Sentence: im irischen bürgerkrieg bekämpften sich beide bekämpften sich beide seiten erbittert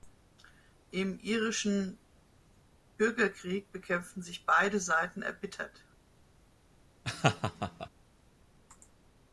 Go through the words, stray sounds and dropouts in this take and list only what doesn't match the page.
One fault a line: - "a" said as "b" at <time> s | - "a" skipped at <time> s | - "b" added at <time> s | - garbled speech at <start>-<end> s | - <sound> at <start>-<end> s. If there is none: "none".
- "bekämpften sich beide" skipped at 4.8 s
- laugh at 7.0-7.9 s